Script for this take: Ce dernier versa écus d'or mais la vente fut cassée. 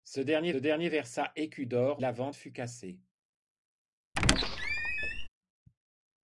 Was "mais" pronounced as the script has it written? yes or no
no